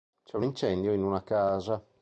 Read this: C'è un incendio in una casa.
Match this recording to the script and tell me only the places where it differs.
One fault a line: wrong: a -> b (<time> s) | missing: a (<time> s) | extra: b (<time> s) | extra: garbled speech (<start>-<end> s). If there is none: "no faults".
no faults